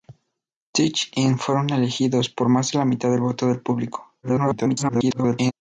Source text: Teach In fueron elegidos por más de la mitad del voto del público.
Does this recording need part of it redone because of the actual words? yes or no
yes